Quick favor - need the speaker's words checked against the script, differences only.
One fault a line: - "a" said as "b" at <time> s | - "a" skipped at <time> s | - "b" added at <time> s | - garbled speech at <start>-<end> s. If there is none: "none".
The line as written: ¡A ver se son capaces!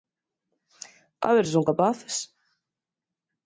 none